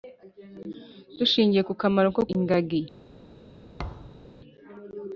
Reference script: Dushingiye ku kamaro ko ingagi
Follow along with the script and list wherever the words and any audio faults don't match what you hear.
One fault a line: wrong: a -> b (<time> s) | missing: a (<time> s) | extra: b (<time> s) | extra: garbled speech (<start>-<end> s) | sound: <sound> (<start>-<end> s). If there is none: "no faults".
sound: thud (3.8-4.3 s)